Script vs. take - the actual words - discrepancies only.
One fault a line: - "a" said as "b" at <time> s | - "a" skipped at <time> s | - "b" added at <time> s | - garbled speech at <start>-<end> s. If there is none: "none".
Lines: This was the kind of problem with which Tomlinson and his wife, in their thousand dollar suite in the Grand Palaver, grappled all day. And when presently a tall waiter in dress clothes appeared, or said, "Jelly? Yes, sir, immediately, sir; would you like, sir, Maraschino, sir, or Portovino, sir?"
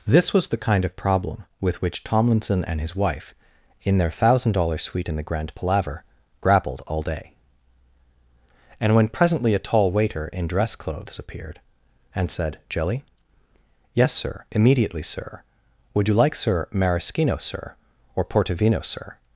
- "or" said as "and" at 12.2 s